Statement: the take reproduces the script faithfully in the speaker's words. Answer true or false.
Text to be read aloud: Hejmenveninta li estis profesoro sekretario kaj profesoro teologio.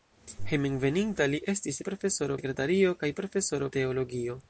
true